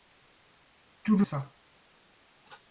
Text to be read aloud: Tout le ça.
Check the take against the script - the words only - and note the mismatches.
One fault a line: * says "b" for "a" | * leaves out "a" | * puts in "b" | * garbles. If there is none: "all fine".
all fine